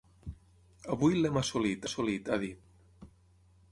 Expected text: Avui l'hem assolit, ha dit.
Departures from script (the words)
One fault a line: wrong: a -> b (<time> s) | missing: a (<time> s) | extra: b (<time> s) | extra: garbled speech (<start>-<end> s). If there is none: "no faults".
extra: assolit (1.8 s)